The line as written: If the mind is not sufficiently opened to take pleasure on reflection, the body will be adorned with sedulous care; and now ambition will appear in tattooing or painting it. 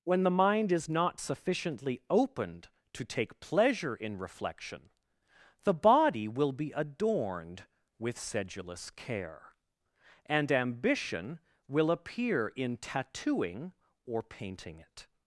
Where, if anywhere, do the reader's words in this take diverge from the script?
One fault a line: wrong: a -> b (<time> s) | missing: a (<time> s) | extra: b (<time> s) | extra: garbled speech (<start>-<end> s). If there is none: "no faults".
wrong: If -> When (0.0 s)
wrong: on -> in (4.0 s)
missing: now (10.5 s)